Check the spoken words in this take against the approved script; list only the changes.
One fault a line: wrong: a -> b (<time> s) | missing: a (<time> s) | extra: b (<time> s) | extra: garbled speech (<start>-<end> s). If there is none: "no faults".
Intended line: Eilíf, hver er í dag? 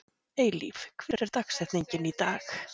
extra: dagsetningin (1.4 s)